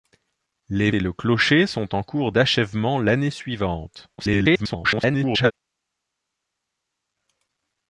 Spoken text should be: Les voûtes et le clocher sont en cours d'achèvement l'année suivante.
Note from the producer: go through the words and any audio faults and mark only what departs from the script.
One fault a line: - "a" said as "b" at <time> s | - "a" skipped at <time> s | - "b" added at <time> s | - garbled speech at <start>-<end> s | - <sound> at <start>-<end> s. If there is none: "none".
- "voûtes" skipped at 0.9 s
- garbled speech at 4.2-5.5 s